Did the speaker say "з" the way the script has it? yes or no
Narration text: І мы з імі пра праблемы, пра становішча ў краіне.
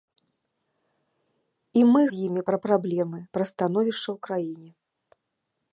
yes